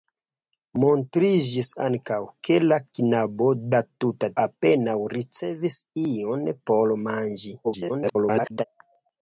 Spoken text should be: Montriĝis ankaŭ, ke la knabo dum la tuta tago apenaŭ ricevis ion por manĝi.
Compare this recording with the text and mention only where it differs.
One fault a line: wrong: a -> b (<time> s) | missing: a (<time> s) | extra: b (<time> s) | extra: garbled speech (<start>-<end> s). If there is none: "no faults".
missing: dum (3.5 s)
missing: tago (4.3 s)
extra: garbled speech (7.6-8.6 s)